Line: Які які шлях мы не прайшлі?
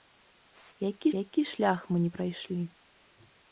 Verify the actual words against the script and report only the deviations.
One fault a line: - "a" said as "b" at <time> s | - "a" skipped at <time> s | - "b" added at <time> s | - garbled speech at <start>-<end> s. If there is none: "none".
none